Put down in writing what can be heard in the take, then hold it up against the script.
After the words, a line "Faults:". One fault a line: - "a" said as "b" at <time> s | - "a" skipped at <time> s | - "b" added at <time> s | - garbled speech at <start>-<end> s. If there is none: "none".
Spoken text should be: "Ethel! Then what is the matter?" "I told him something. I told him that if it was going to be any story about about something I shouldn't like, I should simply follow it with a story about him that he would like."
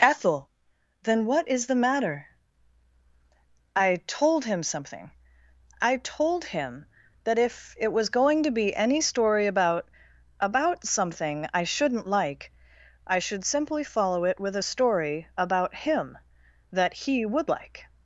"Ethel! Then what is the matter?" "I told him something. I told him that if it was going to be any story about about something I shouldn't like, I should simply follow it with a story about him that he would like."
Faults:
none